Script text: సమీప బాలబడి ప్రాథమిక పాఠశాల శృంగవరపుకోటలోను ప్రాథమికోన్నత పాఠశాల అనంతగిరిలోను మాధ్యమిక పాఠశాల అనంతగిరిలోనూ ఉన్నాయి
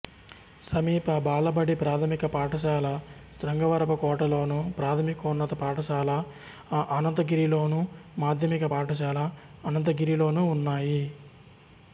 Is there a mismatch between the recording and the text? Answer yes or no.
no